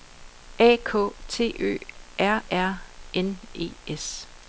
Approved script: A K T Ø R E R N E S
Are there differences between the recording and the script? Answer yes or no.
yes